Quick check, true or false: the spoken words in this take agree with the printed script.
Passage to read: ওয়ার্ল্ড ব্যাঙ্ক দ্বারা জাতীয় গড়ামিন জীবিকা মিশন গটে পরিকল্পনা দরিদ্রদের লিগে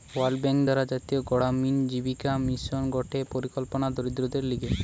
true